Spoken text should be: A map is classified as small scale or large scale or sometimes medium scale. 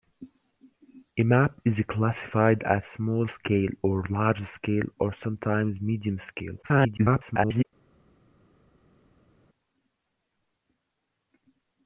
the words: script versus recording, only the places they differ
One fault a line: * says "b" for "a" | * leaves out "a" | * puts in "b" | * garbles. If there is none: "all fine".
* garbles